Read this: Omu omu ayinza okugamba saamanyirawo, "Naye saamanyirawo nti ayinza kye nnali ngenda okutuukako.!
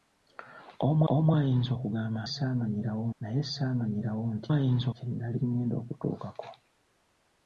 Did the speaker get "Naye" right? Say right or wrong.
right